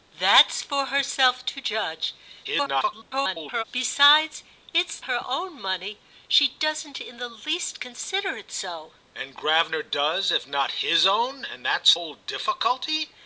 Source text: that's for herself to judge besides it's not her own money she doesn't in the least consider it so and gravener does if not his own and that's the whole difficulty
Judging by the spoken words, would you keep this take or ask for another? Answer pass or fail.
fail